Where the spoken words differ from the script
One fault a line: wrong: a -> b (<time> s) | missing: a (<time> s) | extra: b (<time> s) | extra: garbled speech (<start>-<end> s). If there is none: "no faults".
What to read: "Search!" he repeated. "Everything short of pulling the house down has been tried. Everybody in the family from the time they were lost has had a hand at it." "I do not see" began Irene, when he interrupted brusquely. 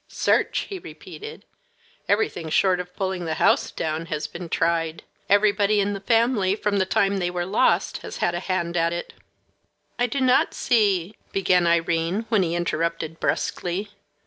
no faults